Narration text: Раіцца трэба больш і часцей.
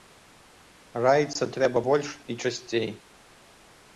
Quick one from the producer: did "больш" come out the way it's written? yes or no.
yes